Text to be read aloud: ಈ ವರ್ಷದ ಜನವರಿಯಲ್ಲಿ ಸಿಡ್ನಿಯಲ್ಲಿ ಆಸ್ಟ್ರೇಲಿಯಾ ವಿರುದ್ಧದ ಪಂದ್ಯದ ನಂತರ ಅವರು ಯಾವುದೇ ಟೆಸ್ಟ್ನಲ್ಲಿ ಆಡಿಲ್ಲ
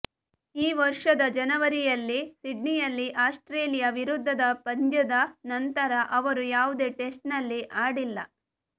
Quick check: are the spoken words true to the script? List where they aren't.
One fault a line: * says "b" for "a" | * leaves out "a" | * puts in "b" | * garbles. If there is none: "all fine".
all fine